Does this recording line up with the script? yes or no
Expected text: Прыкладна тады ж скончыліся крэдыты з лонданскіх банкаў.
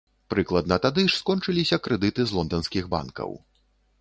yes